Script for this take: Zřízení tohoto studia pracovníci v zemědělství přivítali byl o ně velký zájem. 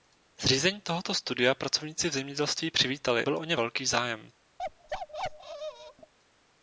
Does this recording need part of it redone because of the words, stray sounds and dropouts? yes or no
yes